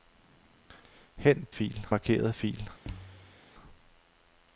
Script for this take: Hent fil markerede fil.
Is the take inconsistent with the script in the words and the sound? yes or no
yes